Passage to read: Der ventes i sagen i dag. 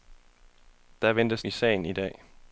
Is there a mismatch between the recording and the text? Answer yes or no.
no